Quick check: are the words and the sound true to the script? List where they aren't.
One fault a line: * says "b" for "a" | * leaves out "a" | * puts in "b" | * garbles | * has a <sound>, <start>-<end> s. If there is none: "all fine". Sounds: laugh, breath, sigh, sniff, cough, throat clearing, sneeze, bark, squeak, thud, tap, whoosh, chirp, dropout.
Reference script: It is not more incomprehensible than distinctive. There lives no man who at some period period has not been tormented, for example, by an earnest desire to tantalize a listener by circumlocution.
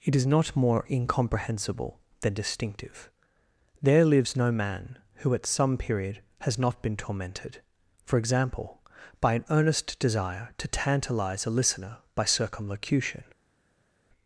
* leaves out "period"